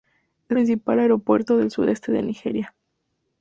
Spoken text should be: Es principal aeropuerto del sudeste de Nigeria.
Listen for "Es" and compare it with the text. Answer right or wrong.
right